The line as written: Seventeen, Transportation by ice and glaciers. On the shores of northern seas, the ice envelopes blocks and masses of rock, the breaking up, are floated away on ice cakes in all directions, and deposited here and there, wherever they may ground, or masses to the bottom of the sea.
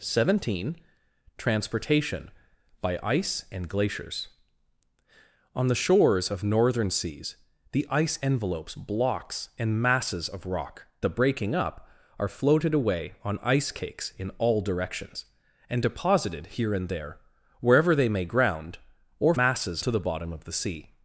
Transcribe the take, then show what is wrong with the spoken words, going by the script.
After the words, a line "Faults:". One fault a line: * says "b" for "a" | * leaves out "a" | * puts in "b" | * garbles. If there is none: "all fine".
Seventeen, Transportation by ice and glaciers. On the shores of northern seas, the ice envelopes blocks and masses of rock, the breaking up, are floated away on ice cakes in all directions, and deposited here and there, wherever they may ground, or masses to the bottom of the sea.
Faults:
all fine